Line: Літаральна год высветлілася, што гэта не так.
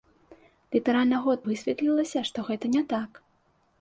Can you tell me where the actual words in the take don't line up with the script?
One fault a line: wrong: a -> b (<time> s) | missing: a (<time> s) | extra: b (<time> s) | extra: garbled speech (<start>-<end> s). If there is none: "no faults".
no faults